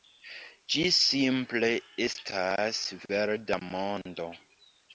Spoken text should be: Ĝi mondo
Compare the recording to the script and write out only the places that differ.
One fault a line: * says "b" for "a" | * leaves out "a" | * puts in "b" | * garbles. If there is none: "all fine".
* puts in "simple estas verda"